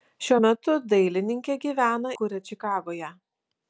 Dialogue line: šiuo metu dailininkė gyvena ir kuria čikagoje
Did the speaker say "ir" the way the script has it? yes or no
no